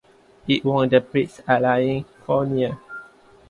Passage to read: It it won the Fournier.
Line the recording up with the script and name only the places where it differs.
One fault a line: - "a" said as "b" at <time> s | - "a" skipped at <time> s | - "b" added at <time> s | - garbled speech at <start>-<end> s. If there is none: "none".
- "it" skipped at 0.7 s
- "Prix Alain" added at 1.0 s